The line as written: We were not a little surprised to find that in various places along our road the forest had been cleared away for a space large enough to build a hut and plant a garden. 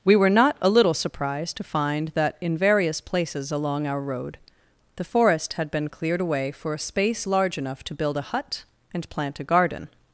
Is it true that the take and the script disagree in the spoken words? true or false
false